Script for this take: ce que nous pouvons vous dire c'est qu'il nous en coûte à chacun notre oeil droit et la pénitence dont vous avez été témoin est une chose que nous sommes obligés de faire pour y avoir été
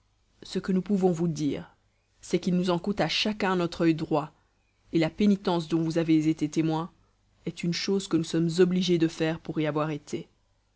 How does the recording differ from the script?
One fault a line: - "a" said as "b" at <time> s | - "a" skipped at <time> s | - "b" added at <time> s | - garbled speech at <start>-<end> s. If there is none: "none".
none